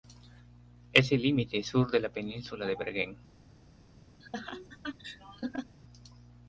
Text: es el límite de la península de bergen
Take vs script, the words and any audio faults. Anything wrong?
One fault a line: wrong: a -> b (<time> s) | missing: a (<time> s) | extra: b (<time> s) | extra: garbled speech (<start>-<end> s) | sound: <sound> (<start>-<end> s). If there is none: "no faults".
extra: sur (1.6 s)
sound: laugh (4.2-5.8 s)